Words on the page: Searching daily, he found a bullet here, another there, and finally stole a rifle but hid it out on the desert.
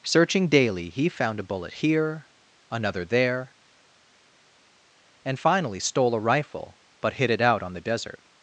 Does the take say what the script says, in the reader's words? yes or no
yes